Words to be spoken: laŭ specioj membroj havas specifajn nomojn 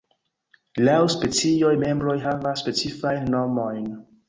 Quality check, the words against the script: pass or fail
pass